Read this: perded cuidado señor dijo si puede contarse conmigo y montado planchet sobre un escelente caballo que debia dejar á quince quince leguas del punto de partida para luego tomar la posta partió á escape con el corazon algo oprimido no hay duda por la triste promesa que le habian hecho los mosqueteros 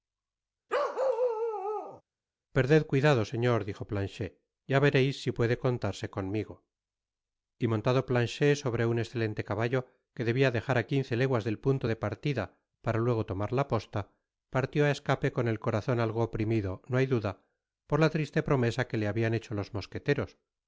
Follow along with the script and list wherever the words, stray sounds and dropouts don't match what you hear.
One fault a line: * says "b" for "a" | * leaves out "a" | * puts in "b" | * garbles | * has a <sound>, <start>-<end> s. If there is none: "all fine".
* has a bark, 0.7-2.0 s
* puts in "planchet ya vereis"
* leaves out "quince"